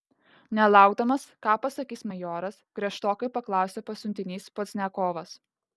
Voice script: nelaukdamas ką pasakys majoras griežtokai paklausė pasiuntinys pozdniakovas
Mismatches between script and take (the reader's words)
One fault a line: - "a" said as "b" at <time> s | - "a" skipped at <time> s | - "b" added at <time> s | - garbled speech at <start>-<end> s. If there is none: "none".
none